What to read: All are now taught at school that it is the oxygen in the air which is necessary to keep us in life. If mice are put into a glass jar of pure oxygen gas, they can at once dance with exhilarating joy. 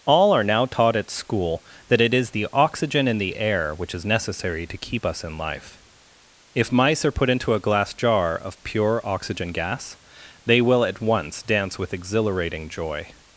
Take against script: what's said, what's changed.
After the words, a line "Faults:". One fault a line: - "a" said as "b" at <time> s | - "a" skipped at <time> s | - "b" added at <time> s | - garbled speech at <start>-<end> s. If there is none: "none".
All are now taught at school that it is the oxygen in the air which is necessary to keep us in life. If mice are put into a glass jar of pure oxygen gas, they will at once dance with exhilarating joy.
Faults:
- "can" said as "will" at 10.6 s